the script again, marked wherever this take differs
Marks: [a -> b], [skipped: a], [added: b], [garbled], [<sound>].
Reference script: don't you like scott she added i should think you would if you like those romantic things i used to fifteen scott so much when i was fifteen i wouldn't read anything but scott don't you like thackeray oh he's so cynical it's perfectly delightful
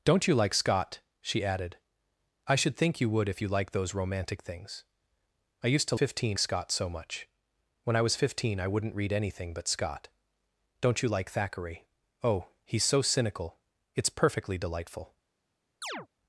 don't you like scott she added i should think you would if you like those romantic things i used to fifteen scott so much when i was fifteen i wouldn't read anything but scott don't you like thackeray oh he's so cynical it's perfectly delightful [chirp]